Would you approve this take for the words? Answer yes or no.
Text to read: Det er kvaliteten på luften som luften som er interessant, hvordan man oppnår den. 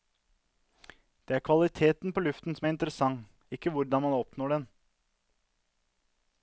no